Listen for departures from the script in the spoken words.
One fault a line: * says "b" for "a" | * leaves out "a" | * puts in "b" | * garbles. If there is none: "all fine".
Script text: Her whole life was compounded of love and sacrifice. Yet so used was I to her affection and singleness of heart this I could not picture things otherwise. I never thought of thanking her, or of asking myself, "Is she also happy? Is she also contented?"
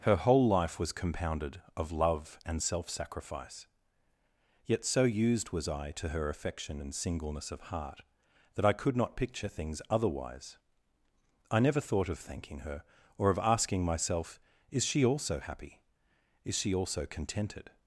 * puts in "self"
* says "that" for "this"